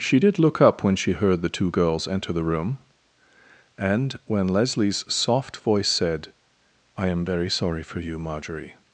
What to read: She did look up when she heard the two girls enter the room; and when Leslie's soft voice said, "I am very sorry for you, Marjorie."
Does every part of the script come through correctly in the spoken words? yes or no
yes